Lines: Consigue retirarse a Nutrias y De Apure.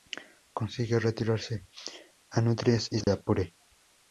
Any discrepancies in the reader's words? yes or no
no